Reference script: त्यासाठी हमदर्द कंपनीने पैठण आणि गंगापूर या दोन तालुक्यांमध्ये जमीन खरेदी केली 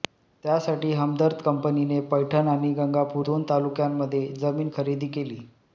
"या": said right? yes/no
no